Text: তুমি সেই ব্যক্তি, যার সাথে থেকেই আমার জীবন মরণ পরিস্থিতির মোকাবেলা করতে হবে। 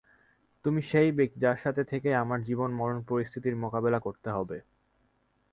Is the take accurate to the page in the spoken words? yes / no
yes